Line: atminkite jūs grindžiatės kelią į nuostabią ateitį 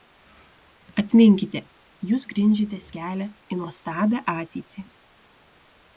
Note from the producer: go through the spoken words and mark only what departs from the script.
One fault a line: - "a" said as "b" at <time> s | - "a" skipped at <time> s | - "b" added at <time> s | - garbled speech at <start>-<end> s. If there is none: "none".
none